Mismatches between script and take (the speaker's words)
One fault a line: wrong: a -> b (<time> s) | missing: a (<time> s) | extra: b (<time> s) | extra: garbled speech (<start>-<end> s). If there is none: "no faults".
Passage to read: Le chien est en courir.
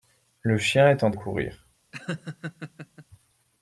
no faults